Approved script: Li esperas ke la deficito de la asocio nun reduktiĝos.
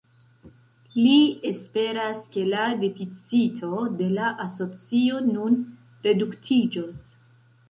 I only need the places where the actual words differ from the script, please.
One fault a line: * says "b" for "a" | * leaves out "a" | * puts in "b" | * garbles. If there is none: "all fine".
all fine